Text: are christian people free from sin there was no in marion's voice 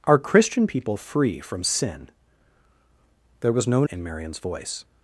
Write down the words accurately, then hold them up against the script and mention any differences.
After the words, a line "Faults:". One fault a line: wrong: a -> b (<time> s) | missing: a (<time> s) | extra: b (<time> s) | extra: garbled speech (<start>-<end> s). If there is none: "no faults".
are christian people free from sin there was no in marion's voice
Faults:
no faults